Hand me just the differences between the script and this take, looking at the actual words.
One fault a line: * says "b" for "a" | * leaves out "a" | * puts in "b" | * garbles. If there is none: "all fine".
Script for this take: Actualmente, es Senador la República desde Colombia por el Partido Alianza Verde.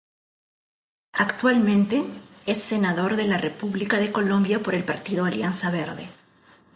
* puts in "de"
* says "de" for "desde"